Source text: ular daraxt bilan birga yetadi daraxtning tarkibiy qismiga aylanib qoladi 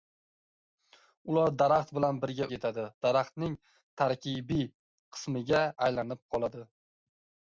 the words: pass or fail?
pass